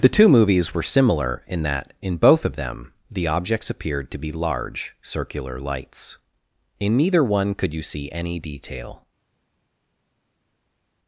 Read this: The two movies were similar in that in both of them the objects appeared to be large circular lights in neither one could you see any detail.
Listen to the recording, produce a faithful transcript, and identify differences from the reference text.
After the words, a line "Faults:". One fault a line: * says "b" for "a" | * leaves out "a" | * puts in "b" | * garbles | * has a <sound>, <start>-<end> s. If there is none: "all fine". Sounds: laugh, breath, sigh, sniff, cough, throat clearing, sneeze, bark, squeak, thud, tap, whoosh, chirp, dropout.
The two movies were similar in that in both of them the objects appeared to be large circular lights in neither one could you see any detail.
Faults:
all fine